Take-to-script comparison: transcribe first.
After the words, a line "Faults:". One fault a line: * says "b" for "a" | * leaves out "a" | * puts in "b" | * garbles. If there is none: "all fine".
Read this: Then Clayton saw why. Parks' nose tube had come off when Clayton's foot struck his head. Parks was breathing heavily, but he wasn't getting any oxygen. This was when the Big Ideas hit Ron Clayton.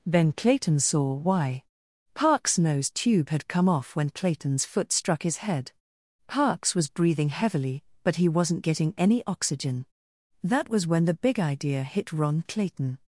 Then Clayton saw why. Parks' nose tube had come off when Clayton's foot struck his head. Parks was breathing heavily, but he wasn't getting any oxygen. That was when the Big Idea hit Ron Clayton.
Faults:
* says "That" for "This"
* says "Idea" for "Ideas"